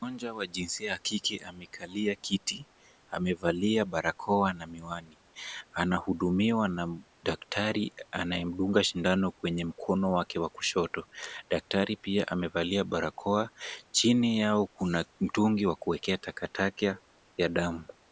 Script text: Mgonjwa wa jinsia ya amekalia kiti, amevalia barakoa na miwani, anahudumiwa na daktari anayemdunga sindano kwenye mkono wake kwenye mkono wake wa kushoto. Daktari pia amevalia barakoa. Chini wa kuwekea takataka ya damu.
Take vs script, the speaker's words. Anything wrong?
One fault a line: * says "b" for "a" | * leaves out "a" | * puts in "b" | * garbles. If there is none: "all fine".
* puts in "kike"
* leaves out "kwenye mkono wake"
* puts in "yao kuna mtungi"